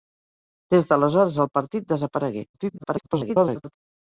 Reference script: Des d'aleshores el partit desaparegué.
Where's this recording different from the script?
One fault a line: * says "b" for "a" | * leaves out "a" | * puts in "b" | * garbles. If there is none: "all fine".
* garbles